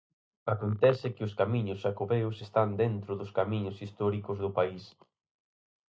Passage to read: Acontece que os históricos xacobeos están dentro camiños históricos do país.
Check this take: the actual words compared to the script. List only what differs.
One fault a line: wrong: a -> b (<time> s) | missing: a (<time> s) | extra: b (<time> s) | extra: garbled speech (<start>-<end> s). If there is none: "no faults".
wrong: históricos -> camiños (1.4 s)
extra: dos (3.2 s)